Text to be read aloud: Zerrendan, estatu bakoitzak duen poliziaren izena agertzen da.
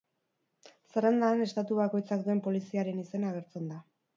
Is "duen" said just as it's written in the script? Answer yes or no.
yes